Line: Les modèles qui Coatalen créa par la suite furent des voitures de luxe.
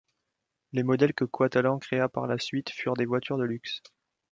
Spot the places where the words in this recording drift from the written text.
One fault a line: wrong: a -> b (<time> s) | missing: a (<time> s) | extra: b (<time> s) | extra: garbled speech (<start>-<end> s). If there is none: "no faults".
wrong: qui -> que (1.1 s)